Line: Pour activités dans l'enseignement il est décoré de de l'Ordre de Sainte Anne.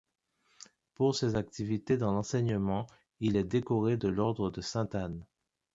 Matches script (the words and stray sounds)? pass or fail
fail